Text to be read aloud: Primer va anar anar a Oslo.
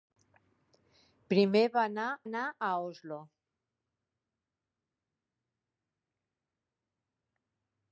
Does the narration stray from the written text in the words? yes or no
no